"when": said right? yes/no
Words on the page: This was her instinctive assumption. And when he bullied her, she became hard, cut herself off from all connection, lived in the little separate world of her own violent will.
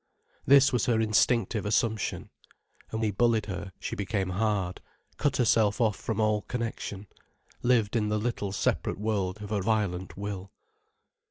no